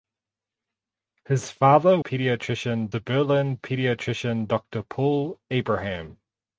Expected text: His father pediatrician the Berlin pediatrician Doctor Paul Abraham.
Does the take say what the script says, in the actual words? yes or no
yes